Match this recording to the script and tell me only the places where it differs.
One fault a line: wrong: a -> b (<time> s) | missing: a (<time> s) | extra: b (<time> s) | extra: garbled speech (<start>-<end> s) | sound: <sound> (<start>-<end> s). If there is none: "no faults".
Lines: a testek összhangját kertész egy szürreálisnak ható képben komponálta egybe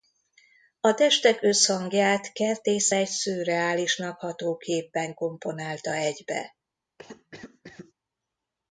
sound: cough (7.0-7.9 s)